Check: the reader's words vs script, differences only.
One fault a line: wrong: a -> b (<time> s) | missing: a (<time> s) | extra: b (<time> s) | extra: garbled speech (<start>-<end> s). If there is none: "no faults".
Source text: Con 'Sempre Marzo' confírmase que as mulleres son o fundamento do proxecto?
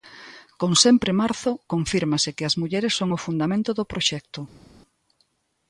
no faults